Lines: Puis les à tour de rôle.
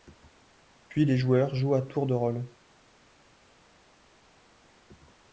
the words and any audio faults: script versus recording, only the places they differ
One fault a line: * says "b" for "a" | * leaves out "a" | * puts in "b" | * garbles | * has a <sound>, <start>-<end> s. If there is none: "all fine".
* puts in "joueurs jouent"